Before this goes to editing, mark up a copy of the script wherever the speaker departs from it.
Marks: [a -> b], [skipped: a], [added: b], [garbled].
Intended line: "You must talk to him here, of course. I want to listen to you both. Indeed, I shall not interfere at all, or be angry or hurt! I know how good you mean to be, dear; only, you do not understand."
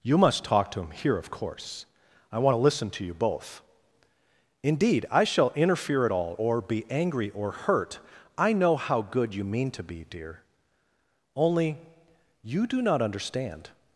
"You must talk to him here, of course. I want to listen to you both. Indeed, I shall [skipped: not] interfere at all, or be angry or hurt! I know how good you mean to be, dear; only, you do not understand."